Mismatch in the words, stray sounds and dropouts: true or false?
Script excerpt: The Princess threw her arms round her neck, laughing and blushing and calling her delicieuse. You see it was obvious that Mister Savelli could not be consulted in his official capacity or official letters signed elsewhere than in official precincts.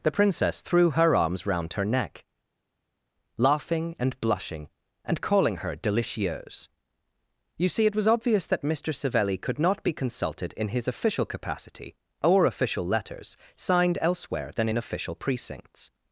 false